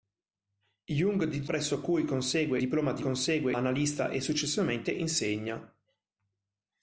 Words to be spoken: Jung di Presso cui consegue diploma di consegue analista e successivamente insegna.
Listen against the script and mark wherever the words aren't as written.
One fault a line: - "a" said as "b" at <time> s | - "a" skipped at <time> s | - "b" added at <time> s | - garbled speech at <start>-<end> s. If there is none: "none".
none